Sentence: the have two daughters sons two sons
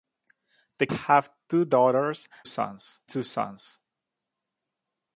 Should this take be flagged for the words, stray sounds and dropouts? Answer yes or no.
no